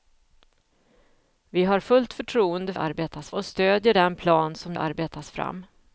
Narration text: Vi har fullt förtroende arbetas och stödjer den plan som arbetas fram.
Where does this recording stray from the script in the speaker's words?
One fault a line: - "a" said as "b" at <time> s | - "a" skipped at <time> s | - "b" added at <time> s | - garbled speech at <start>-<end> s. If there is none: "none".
none